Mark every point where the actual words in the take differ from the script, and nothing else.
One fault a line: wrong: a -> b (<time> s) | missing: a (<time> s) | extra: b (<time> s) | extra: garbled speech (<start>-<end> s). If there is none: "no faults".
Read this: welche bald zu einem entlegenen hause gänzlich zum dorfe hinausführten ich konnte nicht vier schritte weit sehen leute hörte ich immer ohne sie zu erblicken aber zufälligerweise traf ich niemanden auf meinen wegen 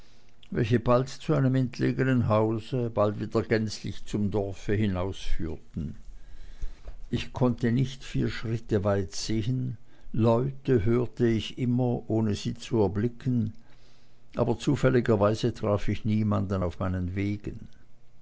extra: bald wieder (2.9 s)